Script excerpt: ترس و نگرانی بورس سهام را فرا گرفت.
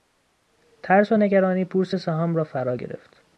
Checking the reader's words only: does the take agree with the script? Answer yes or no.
yes